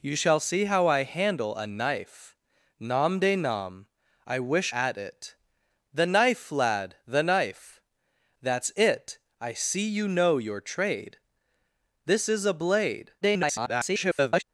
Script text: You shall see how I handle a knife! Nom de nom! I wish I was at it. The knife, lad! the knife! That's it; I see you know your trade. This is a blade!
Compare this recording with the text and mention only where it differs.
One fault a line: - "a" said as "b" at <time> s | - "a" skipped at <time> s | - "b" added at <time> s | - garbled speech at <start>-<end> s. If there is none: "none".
- "I was" skipped at 4.7 s
- garbled speech at 13.2-14.4 s